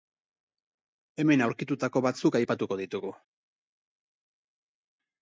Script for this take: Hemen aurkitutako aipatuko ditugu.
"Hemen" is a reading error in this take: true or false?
false